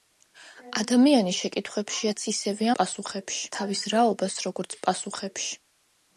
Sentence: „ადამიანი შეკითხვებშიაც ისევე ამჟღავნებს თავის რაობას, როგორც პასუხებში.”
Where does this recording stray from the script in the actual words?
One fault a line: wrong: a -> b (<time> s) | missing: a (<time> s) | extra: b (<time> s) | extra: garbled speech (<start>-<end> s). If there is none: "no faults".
wrong: ამჟღავნებს -> პასუხებში (2.8 s)